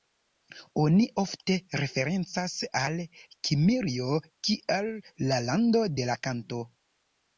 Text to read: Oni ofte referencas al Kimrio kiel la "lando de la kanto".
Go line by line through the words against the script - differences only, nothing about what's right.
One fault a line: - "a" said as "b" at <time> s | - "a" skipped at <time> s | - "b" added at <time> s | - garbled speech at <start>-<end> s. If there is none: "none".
none